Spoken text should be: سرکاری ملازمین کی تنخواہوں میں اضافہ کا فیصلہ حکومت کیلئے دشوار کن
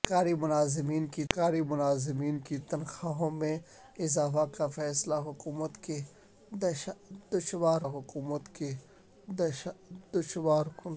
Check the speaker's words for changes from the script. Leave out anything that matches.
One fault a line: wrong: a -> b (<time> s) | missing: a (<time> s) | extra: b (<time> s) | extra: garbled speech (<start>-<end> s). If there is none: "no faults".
extra: سرکاری ملازمین کی (1.3 s)
extra: حکومت کیلئے دشوار (7.8 s)